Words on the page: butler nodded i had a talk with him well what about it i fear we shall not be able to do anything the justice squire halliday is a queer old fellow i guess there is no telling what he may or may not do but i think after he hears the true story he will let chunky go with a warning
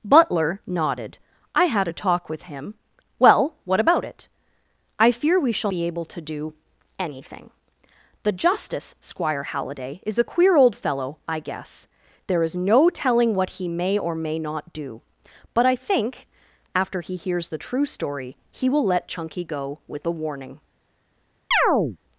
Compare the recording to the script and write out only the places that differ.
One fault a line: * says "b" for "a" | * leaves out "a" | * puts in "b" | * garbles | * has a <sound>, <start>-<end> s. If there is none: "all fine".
* leaves out "not"
* has a chirp, 21.5-22.0 s